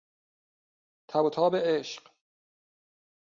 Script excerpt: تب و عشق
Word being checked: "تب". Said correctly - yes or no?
yes